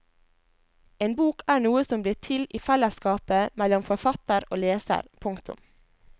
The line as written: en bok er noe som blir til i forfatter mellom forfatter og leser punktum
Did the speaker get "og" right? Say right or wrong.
right